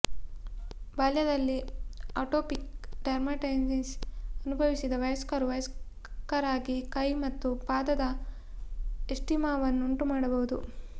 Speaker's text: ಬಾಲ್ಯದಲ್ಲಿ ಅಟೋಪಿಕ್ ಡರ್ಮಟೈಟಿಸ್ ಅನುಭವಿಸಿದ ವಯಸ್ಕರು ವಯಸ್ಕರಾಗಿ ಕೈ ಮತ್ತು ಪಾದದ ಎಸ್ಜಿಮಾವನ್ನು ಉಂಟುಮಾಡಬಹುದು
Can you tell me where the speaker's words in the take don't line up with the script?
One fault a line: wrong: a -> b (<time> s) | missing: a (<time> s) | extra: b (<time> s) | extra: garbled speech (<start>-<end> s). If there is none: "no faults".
no faults